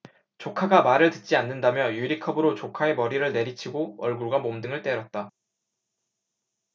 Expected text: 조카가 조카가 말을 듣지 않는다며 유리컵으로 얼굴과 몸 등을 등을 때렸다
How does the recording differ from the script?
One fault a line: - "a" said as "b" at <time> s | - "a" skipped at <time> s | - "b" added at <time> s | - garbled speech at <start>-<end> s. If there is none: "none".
- "조카가" skipped at 0.8 s
- "조카의 머리를 내리치고" added at 2.5 s
- "등을" skipped at 4.8 s